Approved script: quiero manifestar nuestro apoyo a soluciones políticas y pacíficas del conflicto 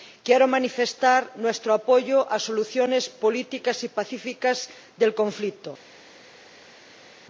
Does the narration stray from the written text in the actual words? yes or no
no